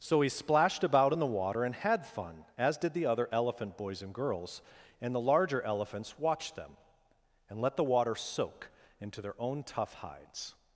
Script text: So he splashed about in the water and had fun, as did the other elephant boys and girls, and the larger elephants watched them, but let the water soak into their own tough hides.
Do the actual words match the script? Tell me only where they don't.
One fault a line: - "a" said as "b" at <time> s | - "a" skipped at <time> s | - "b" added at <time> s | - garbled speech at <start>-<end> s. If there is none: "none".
- "but" said as "and" at 7.5 s